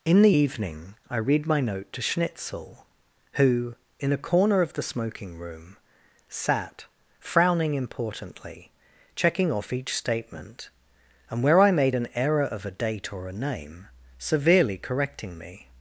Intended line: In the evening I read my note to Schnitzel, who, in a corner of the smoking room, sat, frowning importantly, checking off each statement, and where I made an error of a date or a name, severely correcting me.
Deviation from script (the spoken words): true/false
false